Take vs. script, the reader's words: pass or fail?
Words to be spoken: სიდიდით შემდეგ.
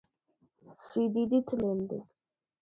pass